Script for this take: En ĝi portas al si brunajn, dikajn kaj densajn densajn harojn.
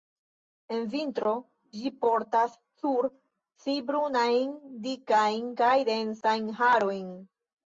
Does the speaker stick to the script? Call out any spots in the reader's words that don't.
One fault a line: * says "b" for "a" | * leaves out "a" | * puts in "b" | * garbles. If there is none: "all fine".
* puts in "vintro"
* says "sur" for "al"
* leaves out "densajn"